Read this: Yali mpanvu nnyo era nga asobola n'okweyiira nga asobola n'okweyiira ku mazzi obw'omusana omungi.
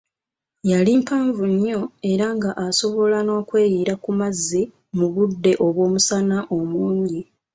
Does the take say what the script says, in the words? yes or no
no